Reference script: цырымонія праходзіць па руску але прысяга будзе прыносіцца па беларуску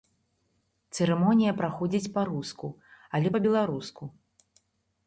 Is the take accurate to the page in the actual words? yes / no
no